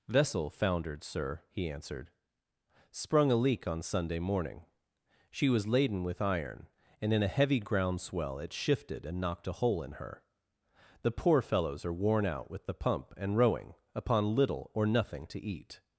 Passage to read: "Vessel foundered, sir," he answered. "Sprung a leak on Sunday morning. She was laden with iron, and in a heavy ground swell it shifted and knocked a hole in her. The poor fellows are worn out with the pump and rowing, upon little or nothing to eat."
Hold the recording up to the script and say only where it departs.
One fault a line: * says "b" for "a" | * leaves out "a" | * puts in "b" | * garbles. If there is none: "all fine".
all fine